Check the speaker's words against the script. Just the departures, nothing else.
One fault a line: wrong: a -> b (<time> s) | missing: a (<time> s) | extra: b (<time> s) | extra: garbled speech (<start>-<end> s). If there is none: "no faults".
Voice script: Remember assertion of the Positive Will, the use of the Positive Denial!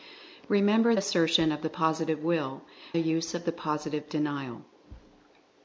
no faults